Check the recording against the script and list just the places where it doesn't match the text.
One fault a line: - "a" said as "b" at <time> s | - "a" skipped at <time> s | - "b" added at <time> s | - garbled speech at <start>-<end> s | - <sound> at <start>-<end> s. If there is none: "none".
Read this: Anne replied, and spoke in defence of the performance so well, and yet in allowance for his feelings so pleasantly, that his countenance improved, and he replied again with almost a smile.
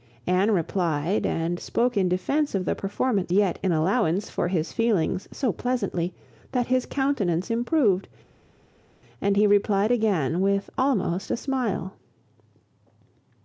- "so well and" skipped at 3.3 s